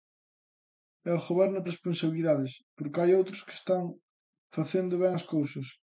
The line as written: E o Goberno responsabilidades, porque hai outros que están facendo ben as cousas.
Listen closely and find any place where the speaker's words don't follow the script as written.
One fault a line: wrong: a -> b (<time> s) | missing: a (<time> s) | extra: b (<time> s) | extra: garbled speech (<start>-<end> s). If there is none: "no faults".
no faults